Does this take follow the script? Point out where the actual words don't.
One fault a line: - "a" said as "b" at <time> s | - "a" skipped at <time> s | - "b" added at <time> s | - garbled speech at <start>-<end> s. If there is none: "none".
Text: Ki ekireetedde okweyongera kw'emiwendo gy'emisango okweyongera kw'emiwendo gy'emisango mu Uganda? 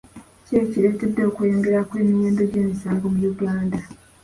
- "okweyongera kw'emiwendo gy'emisango" skipped at 3.0 s